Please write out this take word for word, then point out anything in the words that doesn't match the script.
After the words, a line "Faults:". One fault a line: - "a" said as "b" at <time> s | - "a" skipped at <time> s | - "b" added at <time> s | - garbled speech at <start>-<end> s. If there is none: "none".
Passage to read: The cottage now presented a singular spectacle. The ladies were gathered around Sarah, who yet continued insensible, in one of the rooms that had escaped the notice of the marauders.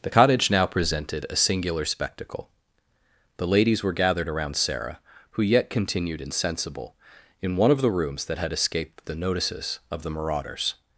The cottage now presented a singular spectacle. The ladies were gathered around Sarah, who yet continued insensible, in one of the rooms that had escaped the notices of the marauders.
Faults:
- "notice" said as "notices" at 9.1 s